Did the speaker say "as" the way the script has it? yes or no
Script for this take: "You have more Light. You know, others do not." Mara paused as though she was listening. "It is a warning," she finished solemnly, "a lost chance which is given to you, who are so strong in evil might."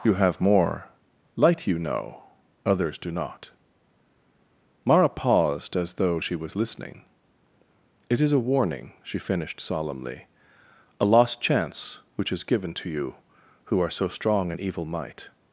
yes